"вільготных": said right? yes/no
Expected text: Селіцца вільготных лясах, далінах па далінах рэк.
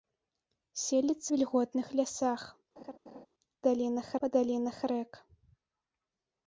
yes